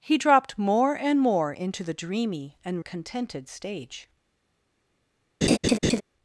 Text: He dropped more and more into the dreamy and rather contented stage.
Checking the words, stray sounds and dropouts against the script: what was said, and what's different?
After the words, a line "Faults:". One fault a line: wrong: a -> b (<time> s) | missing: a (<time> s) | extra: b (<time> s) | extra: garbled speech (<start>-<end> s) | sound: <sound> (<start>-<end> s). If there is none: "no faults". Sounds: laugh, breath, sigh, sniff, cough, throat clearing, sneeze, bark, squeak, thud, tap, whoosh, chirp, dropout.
He dropped more and more into the dreamy and contented stage.
Faults:
missing: rather (2.8 s)
sound: laugh (5.4-6.0 s)